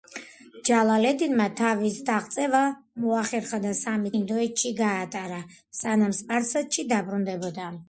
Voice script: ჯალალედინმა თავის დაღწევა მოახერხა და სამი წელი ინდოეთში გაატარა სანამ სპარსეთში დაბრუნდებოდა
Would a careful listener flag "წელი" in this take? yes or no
yes